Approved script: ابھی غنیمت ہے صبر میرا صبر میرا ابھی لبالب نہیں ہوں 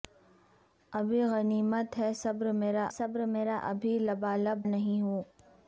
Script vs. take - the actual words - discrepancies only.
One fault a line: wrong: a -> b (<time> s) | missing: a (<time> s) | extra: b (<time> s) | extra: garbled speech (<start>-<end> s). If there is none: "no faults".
no faults